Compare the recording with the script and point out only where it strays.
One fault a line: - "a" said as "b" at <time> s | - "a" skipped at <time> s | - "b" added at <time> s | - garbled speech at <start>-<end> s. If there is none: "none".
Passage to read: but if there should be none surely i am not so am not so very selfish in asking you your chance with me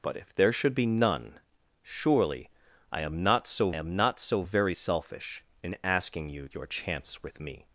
none